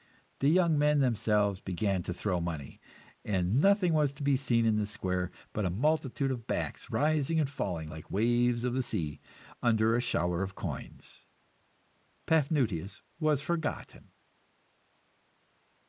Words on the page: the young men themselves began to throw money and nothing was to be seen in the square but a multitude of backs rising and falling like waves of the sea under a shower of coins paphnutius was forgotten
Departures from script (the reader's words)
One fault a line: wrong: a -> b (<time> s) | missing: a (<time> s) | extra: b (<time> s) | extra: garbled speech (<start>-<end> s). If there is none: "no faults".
no faults